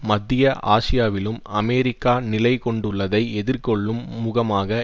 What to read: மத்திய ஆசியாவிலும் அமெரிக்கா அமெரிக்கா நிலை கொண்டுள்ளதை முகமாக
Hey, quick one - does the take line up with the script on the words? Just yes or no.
no